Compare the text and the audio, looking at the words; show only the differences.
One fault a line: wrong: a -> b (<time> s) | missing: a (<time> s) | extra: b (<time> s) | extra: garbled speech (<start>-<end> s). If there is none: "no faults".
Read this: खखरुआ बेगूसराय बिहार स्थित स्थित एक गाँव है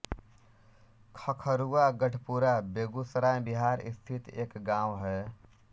extra: गढपुरा (2.0 s)
missing: स्थित (4.3 s)